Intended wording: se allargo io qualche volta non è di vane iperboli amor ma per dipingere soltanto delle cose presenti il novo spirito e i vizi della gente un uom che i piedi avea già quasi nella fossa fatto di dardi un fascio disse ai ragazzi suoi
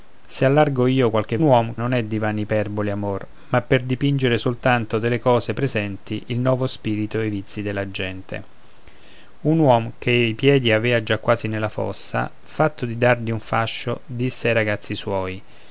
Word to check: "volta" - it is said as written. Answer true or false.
false